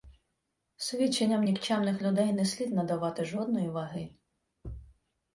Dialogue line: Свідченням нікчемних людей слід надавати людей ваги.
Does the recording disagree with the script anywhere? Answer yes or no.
yes